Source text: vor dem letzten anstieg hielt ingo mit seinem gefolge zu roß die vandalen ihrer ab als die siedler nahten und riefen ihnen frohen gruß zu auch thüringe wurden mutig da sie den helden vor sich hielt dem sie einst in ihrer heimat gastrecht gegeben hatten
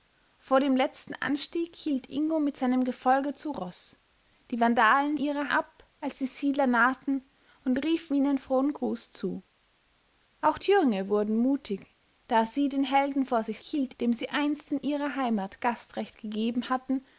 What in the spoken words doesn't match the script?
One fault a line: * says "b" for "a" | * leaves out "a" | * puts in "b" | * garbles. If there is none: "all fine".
all fine